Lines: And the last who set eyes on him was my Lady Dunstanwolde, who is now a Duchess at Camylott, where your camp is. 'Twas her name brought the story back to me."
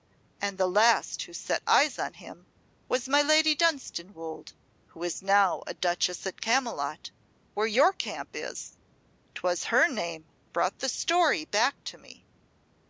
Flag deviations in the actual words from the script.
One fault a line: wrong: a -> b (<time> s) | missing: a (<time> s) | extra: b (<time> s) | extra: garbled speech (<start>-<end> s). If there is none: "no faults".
no faults